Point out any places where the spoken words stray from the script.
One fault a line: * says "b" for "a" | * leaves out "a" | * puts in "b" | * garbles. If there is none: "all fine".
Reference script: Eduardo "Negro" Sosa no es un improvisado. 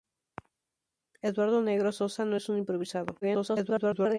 * garbles